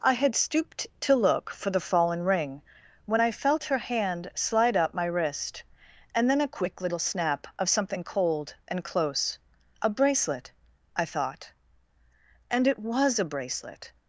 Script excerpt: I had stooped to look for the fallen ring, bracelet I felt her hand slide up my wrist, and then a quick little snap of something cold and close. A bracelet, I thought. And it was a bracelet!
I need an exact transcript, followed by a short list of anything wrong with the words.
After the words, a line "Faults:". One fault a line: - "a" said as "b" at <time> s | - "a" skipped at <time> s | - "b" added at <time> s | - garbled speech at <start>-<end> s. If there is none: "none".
I had stooped to look for the fallen ring, when I felt her hand slide up my wrist, and then a quick little snap of something cold and close. A bracelet, I thought. And it was a bracelet!
Faults:
- "bracelet" said as "when" at 3.0 s